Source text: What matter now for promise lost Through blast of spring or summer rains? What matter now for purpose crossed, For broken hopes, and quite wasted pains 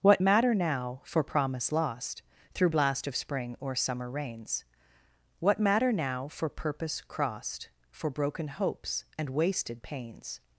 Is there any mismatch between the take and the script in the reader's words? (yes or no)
yes